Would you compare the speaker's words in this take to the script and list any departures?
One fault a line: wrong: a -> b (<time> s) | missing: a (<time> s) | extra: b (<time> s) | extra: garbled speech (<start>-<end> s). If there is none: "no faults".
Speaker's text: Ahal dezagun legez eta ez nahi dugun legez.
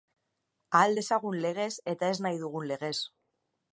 no faults